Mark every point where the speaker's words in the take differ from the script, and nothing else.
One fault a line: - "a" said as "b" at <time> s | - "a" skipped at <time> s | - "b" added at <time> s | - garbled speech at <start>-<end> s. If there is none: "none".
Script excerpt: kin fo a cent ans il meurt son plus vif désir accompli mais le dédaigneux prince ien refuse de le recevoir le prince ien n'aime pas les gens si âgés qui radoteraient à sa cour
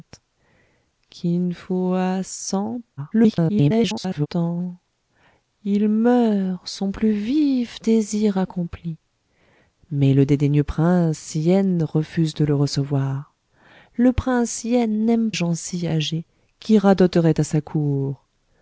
- garbled speech at 3.0-4.3 s
- "pas les" skipped at 15.3 s